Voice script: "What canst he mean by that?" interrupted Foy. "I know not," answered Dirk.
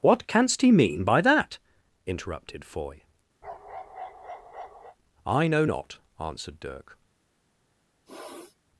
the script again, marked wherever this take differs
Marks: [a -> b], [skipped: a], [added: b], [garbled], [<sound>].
"What canst he mean by that?" interrupted Foy. [bark] "I know not," answered Dirk. [sniff]